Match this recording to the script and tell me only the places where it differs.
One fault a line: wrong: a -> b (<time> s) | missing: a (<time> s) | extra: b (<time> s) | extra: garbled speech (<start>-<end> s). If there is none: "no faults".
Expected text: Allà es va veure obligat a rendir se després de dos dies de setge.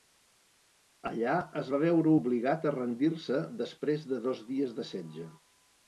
no faults